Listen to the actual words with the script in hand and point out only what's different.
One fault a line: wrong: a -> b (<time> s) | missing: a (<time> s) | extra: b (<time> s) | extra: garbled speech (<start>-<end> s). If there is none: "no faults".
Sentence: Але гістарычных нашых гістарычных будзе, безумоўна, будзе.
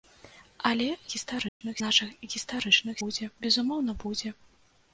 no faults